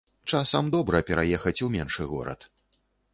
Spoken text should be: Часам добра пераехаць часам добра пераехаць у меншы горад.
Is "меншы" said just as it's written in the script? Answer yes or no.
yes